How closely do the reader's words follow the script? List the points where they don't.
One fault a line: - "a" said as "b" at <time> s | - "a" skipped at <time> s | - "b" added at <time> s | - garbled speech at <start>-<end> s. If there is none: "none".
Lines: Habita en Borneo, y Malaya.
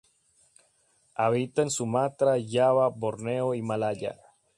- "Sumatra Java" added at 1.7 s